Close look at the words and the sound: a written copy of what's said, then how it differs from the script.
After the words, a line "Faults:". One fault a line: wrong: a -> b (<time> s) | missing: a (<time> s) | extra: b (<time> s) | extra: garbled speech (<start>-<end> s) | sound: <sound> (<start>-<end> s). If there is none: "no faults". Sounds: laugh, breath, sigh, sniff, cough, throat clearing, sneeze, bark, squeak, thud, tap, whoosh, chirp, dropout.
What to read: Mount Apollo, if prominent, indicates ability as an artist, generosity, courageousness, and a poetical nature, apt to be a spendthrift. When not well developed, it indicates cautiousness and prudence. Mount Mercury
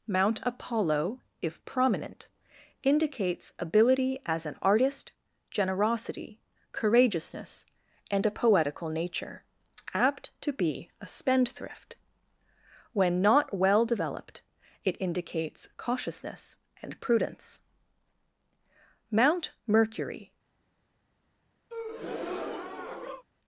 Mount Apollo, if prominent, indicates ability as an artist, generosity, courageousness, and a poetical nature, apt to be a spendthrift. When not well developed, it indicates cautiousness and prudence. Mount Mercury
Faults:
sound: breath (21.7-23.2 s)